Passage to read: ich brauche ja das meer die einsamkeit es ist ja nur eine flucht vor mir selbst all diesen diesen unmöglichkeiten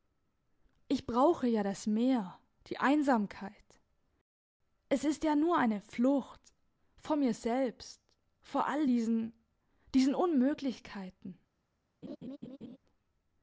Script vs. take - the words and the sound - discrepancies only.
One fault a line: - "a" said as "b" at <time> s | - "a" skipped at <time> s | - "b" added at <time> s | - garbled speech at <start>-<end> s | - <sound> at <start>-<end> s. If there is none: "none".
- "vor" added at 8.4 s
- laugh at 12.0-12.8 s